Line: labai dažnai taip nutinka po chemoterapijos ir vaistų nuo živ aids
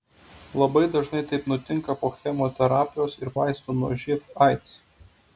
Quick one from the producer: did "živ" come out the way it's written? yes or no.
yes